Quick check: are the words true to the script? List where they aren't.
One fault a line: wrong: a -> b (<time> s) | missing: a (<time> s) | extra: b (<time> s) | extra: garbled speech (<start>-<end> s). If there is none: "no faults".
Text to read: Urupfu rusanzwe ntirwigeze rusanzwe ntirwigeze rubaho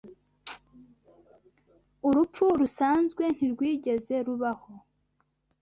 missing: rusanzwe ntirwigeze (4.2 s)